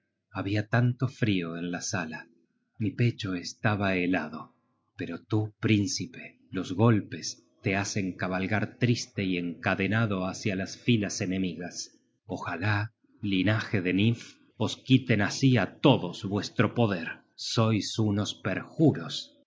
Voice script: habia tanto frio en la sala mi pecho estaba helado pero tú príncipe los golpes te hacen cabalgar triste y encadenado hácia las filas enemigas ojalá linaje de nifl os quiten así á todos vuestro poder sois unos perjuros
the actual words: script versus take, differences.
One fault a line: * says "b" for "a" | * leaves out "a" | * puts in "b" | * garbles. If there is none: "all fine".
all fine